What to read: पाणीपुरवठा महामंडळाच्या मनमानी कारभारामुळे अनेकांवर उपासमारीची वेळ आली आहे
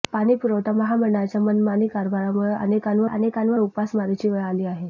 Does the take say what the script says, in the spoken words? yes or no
no